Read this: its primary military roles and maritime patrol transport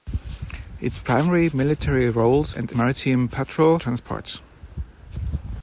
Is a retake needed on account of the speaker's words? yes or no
no